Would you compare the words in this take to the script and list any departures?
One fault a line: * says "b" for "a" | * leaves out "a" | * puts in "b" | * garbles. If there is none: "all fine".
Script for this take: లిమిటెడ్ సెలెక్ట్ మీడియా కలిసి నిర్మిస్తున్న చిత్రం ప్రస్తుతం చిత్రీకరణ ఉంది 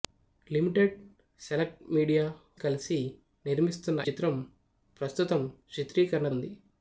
all fine